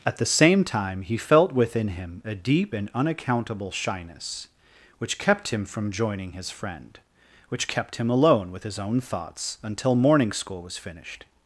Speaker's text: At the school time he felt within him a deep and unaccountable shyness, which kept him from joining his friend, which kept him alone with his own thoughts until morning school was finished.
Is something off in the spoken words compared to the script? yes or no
yes